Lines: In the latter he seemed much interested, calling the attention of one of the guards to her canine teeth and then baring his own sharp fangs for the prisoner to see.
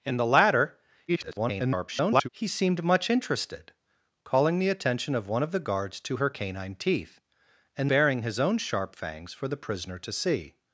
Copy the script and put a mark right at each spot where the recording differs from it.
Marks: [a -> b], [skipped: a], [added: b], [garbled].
In the latter [garbled] he seemed much interested, calling the attention of one of the guards to her canine teeth and [skipped: then] baring his own sharp fangs for the prisoner to see.